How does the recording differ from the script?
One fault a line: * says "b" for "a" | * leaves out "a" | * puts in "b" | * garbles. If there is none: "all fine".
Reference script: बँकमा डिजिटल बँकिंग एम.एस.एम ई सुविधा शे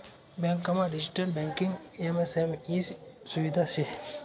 all fine